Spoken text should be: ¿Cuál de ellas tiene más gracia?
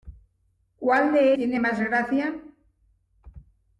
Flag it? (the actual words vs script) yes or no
yes